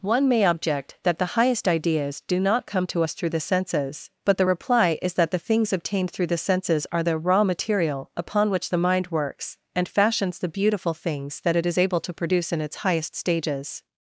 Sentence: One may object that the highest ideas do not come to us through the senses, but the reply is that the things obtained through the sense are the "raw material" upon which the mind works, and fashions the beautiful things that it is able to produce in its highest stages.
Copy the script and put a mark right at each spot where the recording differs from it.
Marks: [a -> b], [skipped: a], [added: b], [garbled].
One may object that the highest ideas do not come to us through the senses, but the reply is that the things obtained through the [sense -> senses] are the "raw material" upon which the mind works, and fashions the beautiful things that it is able to produce in its highest stages.